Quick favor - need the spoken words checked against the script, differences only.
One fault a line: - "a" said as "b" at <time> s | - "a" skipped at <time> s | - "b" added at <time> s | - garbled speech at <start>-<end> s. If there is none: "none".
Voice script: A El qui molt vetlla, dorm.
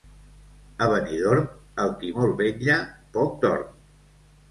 - "Benidorm" added at 0.9 s
- "poc" added at 3.2 s